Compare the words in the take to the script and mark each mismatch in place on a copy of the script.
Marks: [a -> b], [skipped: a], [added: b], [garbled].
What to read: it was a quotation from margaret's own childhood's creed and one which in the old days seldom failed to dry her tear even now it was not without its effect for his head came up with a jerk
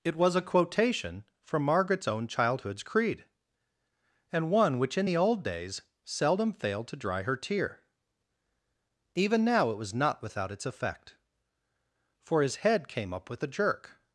it was a quotation from margaret's own childhood's creed and one which in the old days seldom failed to dry her tear even now it was not without its effect for his head came up with a jerk